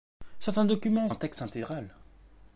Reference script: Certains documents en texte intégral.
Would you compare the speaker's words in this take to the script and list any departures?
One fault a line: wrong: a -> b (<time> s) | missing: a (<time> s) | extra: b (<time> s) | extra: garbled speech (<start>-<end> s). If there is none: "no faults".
no faults